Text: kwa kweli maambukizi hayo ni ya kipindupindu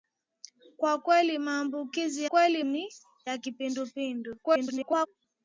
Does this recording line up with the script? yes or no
no